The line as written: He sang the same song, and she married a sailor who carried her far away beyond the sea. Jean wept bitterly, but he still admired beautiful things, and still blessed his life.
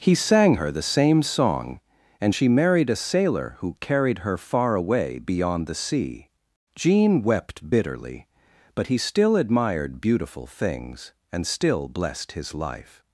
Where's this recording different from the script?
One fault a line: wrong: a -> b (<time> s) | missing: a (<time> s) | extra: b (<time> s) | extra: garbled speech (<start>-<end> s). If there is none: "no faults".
extra: her (0.5 s)